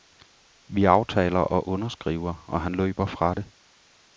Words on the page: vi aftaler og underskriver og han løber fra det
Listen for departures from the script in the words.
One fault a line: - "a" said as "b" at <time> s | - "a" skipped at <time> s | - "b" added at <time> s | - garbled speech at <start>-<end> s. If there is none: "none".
none